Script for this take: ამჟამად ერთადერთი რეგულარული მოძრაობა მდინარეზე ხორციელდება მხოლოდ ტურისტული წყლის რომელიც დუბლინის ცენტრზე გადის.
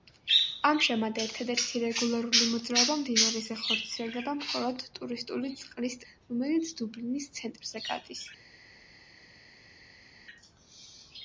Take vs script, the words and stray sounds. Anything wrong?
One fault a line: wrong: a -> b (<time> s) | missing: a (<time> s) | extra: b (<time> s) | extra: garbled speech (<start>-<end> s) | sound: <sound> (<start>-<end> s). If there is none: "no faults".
no faults